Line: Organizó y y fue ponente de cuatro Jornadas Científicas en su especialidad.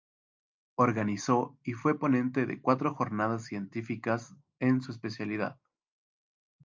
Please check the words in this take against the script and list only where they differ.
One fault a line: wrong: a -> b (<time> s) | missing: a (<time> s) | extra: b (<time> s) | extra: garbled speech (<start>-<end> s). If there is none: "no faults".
missing: y (1.7 s)